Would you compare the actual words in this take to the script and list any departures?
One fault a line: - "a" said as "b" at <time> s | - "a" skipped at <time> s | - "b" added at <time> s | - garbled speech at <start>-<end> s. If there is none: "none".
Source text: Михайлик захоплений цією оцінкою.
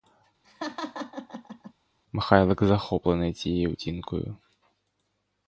none